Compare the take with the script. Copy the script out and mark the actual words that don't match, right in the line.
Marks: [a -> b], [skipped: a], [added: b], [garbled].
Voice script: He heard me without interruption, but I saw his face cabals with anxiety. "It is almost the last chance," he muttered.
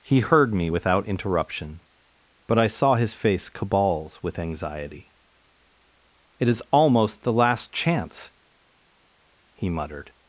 He heard me without interruption, but I saw his face cabals with anxiety. "It is almost the last chance," he muttered.